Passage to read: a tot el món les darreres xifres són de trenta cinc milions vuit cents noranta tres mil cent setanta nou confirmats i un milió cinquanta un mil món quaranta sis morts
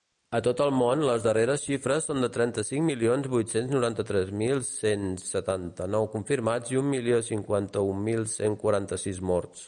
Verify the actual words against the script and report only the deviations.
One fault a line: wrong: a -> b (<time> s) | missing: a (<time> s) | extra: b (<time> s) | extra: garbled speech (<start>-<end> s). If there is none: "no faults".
wrong: món -> cent (8.3 s)